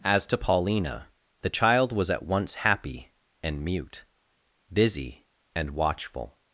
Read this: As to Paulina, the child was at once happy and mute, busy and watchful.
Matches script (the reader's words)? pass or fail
pass